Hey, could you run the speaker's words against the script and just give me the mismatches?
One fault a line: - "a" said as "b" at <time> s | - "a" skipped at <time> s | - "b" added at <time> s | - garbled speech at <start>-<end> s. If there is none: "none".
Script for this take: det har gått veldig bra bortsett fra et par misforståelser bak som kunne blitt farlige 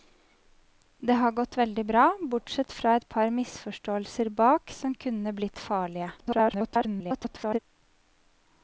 - garbled speech at 6.2-7.6 s